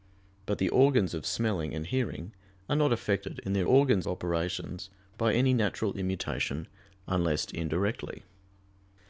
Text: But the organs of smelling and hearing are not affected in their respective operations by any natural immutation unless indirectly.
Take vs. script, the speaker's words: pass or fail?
fail